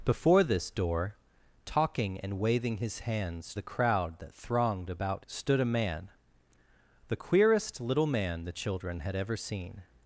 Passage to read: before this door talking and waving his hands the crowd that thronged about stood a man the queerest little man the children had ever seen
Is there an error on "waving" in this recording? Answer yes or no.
no